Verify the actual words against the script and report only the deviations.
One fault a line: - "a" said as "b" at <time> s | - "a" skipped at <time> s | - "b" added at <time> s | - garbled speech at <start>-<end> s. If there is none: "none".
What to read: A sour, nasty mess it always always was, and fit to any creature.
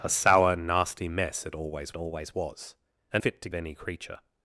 none